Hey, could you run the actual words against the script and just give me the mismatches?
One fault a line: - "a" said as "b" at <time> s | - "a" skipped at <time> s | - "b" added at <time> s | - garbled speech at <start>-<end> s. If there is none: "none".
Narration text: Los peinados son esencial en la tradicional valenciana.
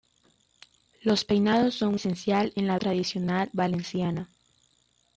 none